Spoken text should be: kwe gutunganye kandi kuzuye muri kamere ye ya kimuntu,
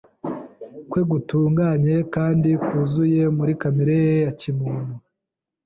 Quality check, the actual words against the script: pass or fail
pass